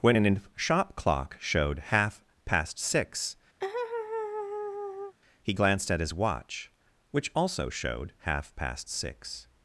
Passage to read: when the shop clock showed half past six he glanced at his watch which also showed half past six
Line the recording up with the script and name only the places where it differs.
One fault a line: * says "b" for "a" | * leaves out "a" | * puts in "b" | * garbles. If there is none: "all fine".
* says "an" for "the"